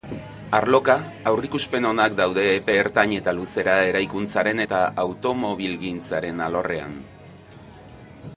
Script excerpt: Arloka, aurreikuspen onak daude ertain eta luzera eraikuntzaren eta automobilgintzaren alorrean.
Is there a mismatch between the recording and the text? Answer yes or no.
yes